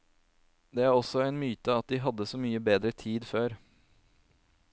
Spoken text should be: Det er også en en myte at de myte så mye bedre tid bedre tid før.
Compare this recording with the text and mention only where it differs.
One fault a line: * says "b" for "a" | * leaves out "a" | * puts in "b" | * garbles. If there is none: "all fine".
* leaves out "en"
* says "hadde" for "myte"
* leaves out "bedre tid"